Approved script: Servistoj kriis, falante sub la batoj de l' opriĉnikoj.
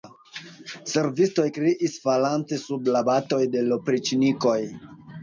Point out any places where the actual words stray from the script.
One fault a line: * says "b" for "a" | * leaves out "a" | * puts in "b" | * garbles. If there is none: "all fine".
all fine